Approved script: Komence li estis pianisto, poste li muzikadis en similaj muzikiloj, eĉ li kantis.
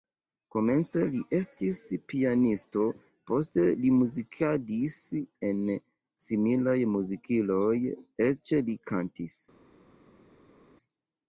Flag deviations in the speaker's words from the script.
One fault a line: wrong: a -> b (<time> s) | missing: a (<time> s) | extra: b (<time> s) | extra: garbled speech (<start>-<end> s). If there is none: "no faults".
no faults